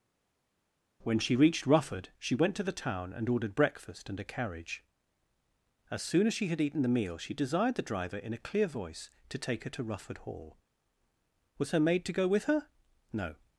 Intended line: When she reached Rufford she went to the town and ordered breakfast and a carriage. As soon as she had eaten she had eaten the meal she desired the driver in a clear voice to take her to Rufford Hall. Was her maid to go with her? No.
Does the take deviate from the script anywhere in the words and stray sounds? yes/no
yes